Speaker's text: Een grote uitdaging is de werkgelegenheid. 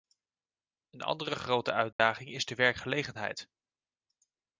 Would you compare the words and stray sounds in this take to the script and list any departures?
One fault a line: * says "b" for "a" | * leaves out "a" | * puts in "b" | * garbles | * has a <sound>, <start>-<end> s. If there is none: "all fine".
* puts in "andere"
* has a dropout, 1.9-2.0 s